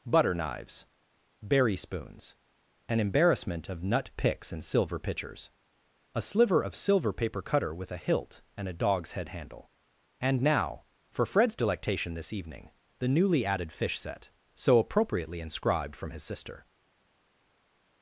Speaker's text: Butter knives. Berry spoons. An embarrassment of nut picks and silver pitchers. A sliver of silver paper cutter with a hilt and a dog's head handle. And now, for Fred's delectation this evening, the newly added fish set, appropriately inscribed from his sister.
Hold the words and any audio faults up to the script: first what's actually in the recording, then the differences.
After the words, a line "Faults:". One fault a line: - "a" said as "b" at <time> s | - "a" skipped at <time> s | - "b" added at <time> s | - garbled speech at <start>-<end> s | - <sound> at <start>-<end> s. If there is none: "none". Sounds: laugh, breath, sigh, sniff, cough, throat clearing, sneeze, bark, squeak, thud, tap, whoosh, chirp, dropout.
Butter knives. Berry spoons. An embarrassment of nut picks and silver pitchers. A sliver of silver paper cutter with a hilt and a dog's head handle. And now, for Fred's delectation this evening, the newly added fish set, so appropriately inscribed from his sister.
Faults:
- "so" added at 14.6 s